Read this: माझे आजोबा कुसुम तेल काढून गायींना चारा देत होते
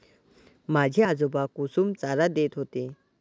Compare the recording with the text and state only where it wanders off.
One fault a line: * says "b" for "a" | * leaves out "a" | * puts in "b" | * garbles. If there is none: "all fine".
* leaves out "तेल काढून गायींना"